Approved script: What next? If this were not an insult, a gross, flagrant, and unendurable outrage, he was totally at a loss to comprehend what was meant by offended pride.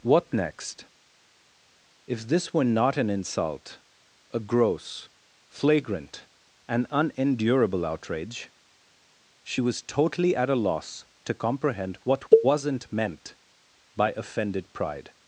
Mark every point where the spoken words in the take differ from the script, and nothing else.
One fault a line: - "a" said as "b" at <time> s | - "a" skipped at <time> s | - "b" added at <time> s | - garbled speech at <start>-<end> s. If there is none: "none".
- "he" said as "she" at 9.4 s
- "was" said as "wasn't" at 12.4 s